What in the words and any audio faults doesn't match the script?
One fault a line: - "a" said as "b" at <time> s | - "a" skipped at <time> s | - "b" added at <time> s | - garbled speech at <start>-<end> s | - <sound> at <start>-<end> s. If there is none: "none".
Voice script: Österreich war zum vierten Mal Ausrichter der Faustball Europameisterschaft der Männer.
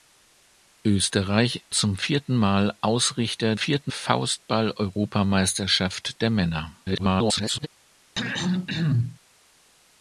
- "war" skipped at 1.7 s
- "der" said as "vierten" at 3.5 s
- garbled speech at 6.8-7.7 s
- throat clearing at 8.2-9.2 s